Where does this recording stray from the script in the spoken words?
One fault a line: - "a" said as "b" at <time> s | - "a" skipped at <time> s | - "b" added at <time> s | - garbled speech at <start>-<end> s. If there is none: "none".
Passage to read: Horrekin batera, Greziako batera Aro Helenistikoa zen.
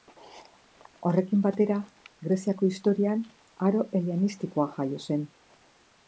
- "batera" said as "historian" at 2.7 s
- "jaio" added at 4.8 s